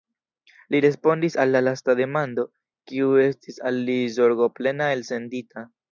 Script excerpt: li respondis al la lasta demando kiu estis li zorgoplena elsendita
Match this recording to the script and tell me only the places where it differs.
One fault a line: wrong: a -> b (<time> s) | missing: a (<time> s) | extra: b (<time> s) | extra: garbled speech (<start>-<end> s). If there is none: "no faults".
extra: al (3.7 s)